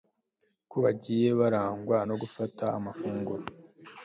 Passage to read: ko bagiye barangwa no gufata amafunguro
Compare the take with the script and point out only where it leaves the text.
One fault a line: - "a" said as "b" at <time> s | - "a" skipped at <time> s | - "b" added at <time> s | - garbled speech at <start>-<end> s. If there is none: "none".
none